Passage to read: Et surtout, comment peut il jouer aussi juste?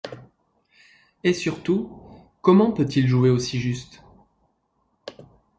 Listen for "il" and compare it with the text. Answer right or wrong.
right